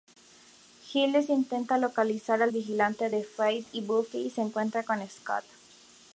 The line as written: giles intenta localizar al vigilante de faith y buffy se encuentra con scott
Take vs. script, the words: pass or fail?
pass